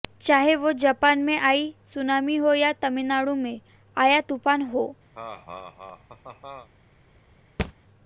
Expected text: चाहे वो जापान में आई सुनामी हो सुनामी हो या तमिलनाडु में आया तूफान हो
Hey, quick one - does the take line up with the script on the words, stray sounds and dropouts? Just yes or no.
no